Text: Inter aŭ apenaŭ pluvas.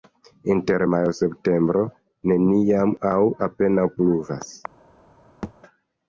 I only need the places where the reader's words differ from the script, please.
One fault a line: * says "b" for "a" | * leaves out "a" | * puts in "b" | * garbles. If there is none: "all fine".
* puts in "majo septembro neniam"